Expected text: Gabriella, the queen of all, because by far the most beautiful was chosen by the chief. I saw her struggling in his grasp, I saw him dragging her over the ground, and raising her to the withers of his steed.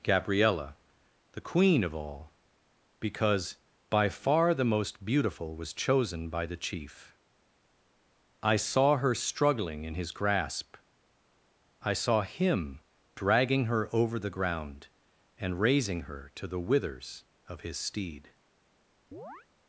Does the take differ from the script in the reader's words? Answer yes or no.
no